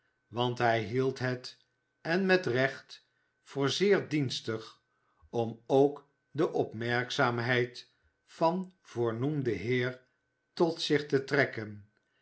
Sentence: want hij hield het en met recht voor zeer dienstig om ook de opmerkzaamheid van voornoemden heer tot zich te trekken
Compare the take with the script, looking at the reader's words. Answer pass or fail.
pass